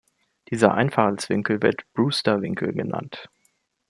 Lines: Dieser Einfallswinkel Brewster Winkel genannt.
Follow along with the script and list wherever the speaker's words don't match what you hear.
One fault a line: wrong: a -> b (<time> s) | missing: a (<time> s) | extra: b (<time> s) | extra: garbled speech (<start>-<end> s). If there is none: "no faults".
extra: wird (1.6 s)